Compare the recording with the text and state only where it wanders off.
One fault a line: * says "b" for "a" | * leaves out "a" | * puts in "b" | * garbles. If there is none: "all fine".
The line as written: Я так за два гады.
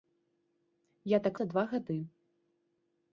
all fine